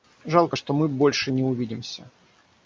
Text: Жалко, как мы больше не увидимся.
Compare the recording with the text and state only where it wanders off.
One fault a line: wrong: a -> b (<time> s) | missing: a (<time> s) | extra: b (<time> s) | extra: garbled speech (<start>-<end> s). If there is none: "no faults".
wrong: как -> что (0.5 s)